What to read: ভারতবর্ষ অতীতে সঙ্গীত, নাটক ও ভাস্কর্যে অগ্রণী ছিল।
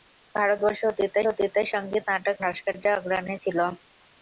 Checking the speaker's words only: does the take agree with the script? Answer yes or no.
no